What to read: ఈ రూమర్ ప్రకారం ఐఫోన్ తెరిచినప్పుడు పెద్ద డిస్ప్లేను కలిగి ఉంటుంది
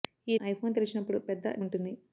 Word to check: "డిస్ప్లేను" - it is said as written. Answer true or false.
false